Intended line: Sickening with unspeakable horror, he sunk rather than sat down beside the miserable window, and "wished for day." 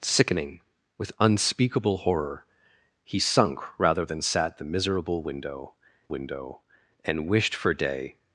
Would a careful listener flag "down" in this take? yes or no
yes